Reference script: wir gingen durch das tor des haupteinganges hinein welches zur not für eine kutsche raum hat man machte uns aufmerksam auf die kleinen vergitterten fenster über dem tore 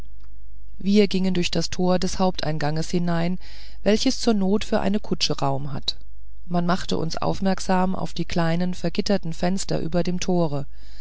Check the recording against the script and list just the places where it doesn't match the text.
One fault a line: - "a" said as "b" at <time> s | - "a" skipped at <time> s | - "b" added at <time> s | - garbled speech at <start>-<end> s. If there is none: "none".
none